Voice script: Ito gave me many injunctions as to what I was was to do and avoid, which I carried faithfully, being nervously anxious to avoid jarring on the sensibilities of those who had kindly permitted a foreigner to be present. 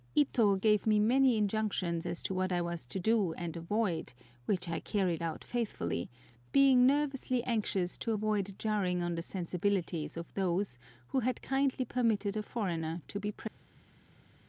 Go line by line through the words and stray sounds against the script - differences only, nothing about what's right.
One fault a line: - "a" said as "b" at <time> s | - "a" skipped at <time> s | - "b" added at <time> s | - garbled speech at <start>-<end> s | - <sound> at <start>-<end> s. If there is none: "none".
- "was" skipped at 2.9 s
- "out" added at 5.2 s